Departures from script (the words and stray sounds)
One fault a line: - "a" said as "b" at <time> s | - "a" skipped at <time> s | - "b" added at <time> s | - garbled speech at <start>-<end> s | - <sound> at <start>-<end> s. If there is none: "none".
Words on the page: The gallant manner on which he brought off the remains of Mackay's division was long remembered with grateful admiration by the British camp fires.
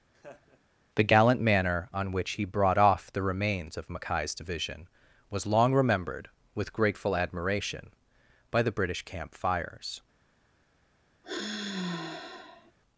- laugh at 0.1-0.6 s
- sigh at 11.2-12.7 s